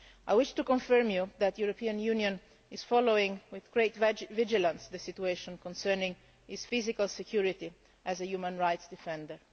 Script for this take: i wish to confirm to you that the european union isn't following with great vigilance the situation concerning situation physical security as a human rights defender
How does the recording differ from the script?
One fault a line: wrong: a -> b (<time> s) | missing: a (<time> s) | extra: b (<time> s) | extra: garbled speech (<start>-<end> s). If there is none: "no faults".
wrong: isn't -> is (2.7 s)
wrong: situation -> his (6.5 s)